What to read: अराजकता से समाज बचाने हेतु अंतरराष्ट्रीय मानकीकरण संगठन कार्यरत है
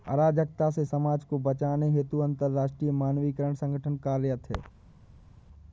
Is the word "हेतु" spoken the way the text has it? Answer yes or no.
yes